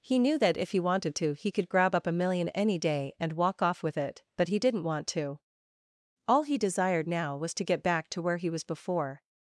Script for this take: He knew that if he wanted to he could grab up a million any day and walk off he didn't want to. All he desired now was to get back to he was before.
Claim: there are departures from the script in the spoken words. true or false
true